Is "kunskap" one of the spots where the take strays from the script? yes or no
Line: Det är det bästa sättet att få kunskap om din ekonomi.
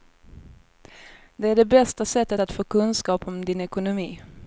no